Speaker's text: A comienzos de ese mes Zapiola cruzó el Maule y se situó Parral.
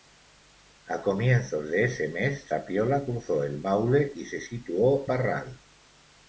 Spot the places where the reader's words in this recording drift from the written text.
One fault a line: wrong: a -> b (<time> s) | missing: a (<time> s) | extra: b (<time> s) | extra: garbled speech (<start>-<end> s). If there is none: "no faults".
no faults